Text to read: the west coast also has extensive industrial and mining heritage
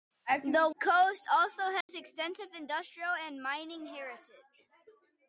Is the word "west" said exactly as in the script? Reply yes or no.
no